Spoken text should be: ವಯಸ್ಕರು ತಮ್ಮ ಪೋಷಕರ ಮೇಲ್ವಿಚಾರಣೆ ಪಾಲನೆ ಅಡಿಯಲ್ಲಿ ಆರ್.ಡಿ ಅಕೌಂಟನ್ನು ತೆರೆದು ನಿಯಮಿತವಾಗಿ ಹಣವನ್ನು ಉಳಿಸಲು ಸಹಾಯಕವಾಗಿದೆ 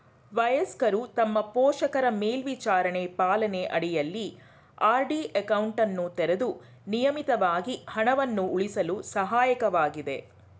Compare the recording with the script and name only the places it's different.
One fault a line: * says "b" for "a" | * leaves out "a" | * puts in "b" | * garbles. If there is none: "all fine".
all fine